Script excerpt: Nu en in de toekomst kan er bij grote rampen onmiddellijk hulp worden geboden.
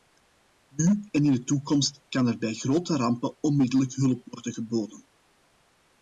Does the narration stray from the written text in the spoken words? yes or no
no